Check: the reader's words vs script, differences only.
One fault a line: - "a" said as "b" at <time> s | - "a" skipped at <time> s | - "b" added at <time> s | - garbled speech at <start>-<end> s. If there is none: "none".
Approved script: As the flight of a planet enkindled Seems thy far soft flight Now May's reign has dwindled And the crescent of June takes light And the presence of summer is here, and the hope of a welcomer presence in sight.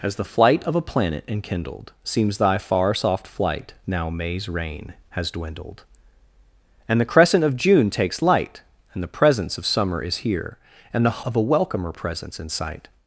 - "hope" skipped at 11.2 s